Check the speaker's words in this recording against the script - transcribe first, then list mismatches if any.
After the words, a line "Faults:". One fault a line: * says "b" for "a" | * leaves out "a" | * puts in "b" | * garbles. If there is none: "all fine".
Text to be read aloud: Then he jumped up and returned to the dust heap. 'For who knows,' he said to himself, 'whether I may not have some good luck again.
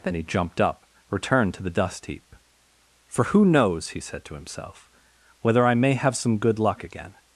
Then he jumped up returned to the dust heap. 'For who knows,' he said to himself, 'whether I may have some good luck again.
Faults:
* leaves out "and"
* leaves out "not"